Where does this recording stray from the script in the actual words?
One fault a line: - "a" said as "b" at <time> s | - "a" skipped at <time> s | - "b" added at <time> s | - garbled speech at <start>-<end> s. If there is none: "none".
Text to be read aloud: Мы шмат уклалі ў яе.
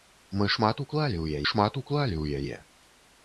- "шмат уклалі ў" added at 1.5 s